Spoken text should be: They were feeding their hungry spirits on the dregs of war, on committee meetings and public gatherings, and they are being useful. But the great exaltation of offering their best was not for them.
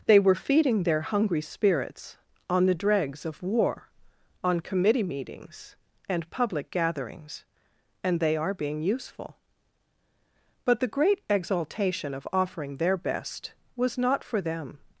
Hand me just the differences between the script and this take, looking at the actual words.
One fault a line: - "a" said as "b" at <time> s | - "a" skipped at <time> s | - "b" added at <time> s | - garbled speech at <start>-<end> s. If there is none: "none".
none